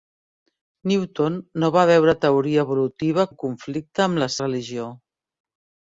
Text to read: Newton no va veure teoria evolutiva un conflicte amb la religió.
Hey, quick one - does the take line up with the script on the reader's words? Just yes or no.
yes